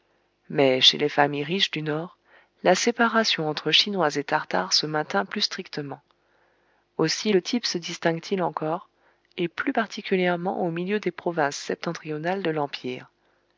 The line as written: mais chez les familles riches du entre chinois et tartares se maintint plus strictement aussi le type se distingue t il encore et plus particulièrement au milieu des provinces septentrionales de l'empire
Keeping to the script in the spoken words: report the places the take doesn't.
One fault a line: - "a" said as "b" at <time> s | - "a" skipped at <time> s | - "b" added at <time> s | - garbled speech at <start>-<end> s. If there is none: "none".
- "nord la séparation" added at 1.8 s